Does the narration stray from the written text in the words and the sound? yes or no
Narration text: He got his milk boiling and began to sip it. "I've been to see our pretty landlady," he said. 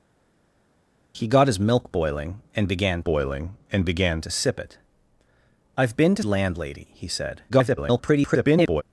yes